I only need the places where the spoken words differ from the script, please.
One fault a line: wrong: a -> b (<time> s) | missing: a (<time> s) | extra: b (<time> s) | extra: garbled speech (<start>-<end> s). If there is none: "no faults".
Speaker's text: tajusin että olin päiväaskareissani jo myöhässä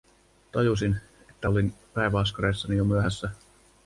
no faults